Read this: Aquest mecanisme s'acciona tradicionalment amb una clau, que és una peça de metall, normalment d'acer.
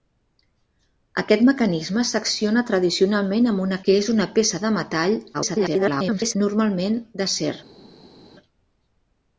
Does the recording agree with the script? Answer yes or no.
no